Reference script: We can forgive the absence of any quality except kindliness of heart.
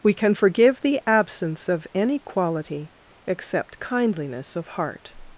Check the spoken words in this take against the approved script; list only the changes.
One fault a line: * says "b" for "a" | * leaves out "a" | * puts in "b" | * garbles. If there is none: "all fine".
all fine